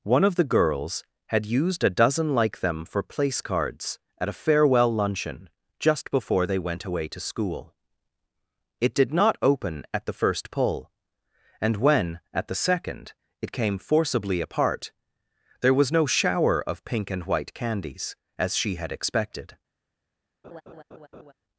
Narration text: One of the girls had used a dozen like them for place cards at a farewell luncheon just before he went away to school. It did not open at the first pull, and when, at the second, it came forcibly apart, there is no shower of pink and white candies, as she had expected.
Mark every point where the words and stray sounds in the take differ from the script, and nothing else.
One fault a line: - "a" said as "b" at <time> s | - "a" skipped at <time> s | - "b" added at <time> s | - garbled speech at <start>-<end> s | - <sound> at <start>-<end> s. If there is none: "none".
- "he" said as "they" at 6.5 s
- "is" said as "was" at 15.7 s
- laugh at 20.4-21.3 s